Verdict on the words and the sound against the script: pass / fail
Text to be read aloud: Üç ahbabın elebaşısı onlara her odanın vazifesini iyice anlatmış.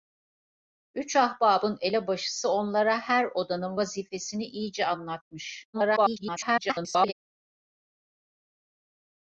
fail